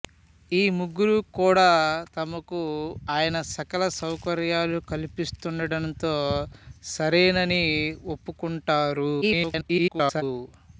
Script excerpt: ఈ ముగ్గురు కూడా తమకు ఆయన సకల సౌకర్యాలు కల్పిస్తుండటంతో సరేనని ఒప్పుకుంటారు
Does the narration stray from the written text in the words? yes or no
yes